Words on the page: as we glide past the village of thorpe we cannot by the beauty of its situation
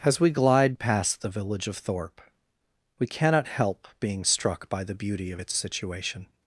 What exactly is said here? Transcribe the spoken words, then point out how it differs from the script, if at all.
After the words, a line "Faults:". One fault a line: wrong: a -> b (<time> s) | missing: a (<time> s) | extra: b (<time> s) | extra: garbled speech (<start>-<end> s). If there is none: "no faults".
as we glide past the village of thorpe we cannot help being struck by the beauty of its situation
Faults:
extra: help being struck (3.5 s)